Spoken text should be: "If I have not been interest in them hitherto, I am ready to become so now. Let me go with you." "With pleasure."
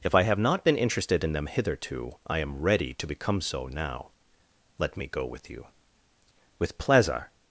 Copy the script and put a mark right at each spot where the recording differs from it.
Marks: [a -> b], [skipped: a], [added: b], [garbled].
"If I have not been [interest -> interested] in them hitherto, I am ready to become so now. Let me go with you." "With pleasure."